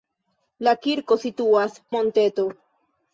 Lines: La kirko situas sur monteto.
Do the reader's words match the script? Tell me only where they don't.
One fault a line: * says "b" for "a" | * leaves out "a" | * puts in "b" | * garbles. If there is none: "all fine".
* leaves out "sur"